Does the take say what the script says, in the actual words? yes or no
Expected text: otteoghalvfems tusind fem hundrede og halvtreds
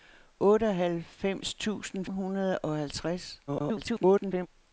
no